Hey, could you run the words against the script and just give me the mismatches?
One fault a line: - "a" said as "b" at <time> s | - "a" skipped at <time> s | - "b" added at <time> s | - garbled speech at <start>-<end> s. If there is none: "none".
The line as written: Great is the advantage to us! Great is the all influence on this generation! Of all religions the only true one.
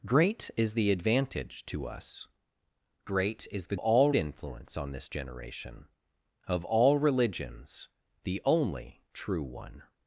none